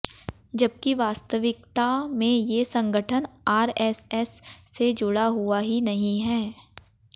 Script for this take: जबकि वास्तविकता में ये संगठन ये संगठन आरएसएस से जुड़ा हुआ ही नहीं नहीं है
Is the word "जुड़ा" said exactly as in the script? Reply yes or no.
yes